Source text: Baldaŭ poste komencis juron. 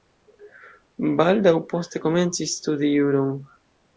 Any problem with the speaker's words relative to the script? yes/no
yes